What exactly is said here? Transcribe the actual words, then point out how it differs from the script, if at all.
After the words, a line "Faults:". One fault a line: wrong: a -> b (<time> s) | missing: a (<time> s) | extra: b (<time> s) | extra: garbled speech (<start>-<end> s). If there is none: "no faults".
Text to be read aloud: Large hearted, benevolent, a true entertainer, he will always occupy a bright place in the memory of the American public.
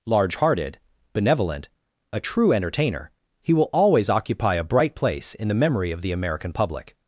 Large hearted, benevolent, a true entertainer, he will always occupy a bright place in the memory of the American public.
Faults:
no faults